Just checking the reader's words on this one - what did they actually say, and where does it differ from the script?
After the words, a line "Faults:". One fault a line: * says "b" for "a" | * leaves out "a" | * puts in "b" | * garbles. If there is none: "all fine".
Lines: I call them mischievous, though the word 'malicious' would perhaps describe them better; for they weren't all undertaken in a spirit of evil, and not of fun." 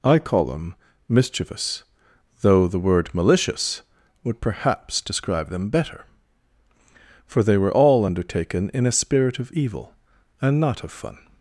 I call them mischievous, though the word 'malicious' would perhaps describe them better; for they were all undertaken in a spirit of evil, and not of fun."
Faults:
* says "were" for "weren't"